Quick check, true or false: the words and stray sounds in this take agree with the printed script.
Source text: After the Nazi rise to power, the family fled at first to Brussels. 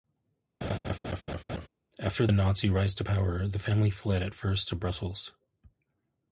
false